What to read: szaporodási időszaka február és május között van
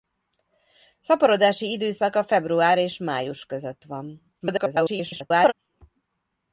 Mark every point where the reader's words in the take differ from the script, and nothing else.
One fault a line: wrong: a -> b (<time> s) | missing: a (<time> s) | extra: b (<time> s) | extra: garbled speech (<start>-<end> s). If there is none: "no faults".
extra: garbled speech (4.4-5.5 s)